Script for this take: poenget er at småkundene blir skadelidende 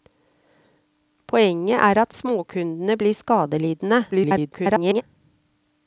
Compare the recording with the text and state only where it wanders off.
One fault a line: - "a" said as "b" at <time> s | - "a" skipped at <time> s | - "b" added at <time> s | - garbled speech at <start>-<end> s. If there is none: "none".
- garbled speech at 4.1-5.0 s